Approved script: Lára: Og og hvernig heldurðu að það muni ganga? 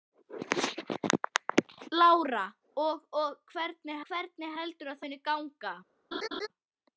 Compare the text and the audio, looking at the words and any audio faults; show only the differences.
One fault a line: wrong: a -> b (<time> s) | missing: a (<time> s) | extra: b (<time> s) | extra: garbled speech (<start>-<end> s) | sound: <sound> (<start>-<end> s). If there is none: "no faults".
extra: hvernig (4.1 s)
missing: það (5.1 s)
sound: laugh (6.1-6.5 s)